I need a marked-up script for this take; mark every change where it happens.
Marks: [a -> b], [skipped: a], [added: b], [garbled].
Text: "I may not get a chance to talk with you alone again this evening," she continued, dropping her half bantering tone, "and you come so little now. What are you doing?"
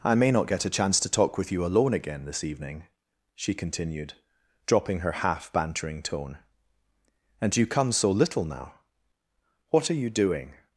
"I may not get a chance to talk with you alone again this evening," she continued, dropping her half bantering tone, "and you come so little now. What are you doing?"